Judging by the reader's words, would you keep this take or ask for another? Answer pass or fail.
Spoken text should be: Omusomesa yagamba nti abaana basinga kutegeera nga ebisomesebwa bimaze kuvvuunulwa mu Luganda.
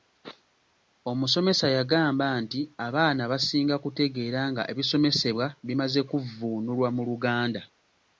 pass